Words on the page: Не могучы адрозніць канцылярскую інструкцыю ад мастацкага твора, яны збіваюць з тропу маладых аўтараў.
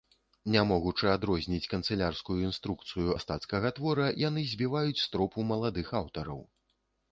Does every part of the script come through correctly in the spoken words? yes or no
no